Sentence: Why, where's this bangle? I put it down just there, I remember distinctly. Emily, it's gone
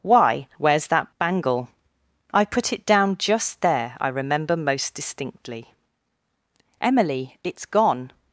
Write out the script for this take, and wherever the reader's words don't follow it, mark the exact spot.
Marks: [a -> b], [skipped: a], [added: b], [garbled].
Why, where's [this -> that] bangle? I put it down just there, I remember [added: most] distinctly. Emily, it's gone